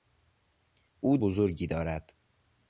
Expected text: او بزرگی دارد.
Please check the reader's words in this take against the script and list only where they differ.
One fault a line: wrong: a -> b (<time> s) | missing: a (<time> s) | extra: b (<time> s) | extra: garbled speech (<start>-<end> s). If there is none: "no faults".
no faults